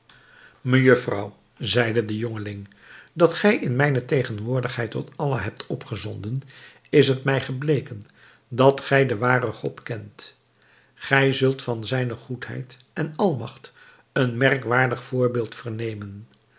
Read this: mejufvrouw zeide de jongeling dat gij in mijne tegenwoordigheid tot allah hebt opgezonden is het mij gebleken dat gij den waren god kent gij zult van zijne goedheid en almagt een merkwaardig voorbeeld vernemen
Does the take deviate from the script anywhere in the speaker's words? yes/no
no